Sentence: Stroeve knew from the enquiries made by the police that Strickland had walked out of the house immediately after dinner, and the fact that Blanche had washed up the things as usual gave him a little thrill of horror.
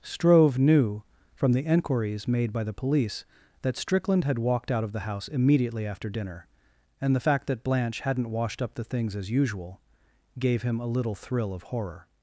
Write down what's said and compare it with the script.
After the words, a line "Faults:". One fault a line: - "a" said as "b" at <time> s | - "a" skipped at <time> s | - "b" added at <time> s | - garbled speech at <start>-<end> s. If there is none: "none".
Stroeve knew from the enquiries made by the police that Strickland had walked out of the house immediately after dinner, and the fact that Blanche hadn't washed up the things as usual gave him a little thrill of horror.
Faults:
- "had" said as "hadn't" at 8.0 s